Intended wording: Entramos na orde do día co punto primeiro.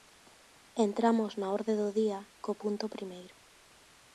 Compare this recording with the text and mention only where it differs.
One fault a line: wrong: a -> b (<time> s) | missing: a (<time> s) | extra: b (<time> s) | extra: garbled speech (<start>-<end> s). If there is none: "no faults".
no faults